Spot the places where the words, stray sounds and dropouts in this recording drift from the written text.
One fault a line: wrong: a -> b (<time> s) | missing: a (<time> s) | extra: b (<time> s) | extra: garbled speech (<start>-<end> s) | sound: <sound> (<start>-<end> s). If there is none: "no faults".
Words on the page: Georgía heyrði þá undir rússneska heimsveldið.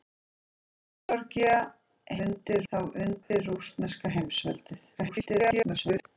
wrong: heyrði -> undir (2.3 s)
sound: dropout (3.2-3.3 s)
extra: garbled speech (4.9-6.0 s)